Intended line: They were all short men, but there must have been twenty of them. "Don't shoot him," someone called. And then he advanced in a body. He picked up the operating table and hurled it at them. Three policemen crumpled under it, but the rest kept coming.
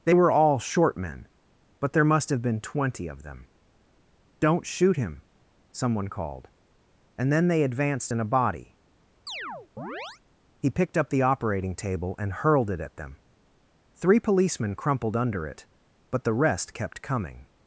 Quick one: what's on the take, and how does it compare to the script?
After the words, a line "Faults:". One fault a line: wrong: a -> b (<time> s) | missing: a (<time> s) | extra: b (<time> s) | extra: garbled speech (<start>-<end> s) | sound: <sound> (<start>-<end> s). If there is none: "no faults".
They were all short men, but there must have been twenty of them. "Don't shoot him," someone called. And then they advanced in a body. He picked up the operating table and hurled it at them. Three policemen crumpled under it, but the rest kept coming.
Faults:
wrong: he -> they (7.5 s)
sound: chirp (9.3-10.2 s)